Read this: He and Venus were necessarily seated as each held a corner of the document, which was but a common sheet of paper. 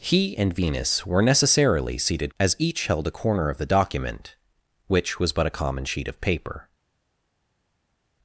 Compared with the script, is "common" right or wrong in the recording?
right